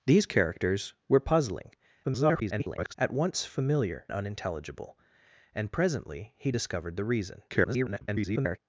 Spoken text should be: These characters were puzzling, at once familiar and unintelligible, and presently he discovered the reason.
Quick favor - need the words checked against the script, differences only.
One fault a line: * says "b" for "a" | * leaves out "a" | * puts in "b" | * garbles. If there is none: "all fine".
* garbles
* leaves out "and"
* garbles